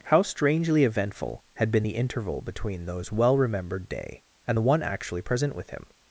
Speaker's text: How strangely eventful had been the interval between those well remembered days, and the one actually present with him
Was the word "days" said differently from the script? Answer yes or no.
yes